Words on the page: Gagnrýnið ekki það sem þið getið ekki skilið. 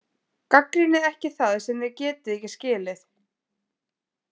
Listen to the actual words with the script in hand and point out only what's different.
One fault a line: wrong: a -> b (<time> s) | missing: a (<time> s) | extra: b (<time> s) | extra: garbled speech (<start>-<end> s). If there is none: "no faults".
no faults